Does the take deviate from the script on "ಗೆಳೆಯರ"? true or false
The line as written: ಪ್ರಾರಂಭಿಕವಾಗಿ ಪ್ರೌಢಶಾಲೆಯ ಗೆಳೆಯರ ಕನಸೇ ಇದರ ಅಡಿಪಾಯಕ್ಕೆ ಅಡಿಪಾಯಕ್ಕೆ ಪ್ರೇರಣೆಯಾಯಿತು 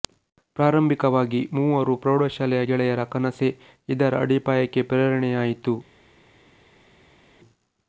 false